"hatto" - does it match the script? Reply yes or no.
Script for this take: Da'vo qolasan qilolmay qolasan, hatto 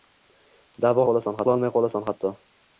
yes